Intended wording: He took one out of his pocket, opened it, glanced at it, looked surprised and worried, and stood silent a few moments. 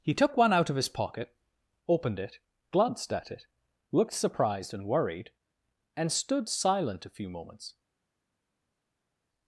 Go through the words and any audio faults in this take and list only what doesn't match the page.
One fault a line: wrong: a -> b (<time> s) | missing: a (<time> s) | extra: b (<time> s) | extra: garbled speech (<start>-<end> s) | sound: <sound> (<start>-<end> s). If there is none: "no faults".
no faults